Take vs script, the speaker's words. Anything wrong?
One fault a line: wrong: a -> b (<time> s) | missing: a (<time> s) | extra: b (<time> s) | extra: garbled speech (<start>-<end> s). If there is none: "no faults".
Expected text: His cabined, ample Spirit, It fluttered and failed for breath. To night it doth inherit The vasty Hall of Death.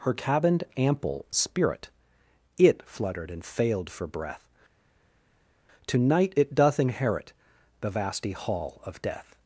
wrong: His -> Her (0.0 s)